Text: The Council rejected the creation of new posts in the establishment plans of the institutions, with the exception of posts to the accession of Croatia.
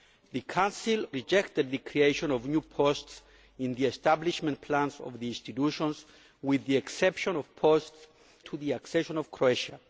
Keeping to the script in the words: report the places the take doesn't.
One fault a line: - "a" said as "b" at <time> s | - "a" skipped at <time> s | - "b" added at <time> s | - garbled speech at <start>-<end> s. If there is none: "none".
none